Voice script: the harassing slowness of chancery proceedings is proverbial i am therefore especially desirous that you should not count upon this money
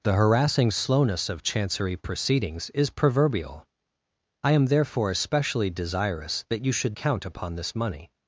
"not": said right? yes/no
no